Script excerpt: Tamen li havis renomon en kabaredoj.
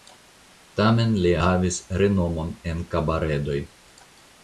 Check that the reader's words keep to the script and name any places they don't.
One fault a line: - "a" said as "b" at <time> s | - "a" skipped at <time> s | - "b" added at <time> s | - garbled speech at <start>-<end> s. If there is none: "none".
none